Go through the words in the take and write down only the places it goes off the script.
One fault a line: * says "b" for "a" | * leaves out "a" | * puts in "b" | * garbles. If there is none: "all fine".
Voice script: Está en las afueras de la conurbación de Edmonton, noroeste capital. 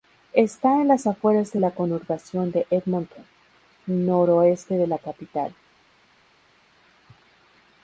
* puts in "de la"